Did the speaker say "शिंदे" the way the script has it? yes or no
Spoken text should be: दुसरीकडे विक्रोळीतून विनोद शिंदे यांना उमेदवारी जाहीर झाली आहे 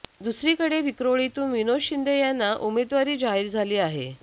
yes